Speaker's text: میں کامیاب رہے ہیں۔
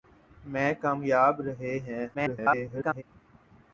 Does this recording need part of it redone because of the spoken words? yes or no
yes